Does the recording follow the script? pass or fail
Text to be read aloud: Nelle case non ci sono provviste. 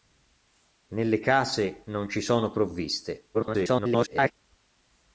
fail